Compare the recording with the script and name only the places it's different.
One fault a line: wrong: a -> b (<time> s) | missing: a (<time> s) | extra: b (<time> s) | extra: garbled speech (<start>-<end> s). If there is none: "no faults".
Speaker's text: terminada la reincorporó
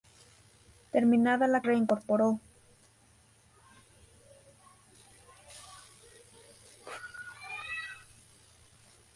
no faults